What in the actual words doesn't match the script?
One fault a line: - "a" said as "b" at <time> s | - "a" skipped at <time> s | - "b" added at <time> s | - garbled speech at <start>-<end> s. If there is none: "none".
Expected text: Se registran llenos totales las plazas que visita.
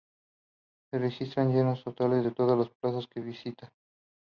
- "en todas" added at 2.2 s